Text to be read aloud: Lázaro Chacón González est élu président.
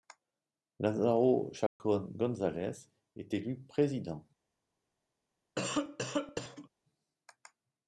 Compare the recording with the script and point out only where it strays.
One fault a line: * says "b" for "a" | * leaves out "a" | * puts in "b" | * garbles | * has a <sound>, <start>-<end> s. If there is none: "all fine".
* has a dropout, 1.7-1.8 s
* has a cough, 5.6-6.7 s